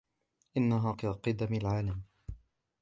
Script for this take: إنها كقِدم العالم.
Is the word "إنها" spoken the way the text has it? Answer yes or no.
yes